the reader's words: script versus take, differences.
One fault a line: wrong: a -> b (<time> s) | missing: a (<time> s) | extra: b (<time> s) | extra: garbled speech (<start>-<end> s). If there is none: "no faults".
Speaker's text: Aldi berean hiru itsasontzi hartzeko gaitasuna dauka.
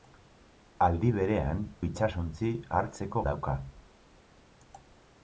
missing: hiru (1.6 s)
missing: gaitasuna (3.2 s)